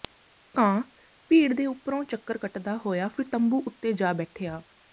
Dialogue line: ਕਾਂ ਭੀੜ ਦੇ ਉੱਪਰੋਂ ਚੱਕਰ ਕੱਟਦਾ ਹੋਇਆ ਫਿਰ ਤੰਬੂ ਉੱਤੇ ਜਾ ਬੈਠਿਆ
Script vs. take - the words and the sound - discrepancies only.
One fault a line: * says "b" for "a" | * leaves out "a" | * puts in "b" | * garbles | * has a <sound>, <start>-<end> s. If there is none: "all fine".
all fine